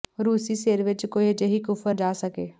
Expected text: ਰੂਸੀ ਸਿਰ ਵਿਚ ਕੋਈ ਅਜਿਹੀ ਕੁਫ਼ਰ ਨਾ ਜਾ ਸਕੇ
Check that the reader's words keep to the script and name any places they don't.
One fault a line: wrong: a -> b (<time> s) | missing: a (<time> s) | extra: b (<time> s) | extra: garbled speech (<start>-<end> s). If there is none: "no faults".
missing: ਨਾ (1.9 s)